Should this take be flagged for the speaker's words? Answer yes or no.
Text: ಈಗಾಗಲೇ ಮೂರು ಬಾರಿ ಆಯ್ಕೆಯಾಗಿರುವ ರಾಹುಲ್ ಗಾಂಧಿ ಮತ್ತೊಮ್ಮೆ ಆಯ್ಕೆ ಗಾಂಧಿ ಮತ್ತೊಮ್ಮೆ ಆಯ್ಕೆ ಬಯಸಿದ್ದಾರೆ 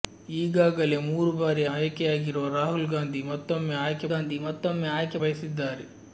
no